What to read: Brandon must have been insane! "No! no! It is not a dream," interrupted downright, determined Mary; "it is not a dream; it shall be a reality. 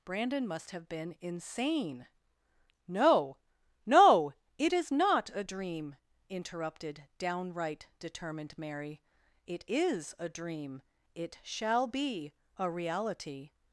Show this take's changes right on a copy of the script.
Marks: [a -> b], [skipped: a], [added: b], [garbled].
Brandon must have been insane! "No! no! It is not a dream," interrupted downright, determined Mary; "it is [skipped: not] a dream; it shall be a reality.